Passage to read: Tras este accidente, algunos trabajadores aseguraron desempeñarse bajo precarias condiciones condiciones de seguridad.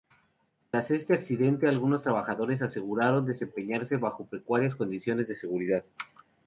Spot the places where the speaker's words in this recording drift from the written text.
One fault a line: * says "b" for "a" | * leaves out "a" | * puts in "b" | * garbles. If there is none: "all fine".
* leaves out "condiciones"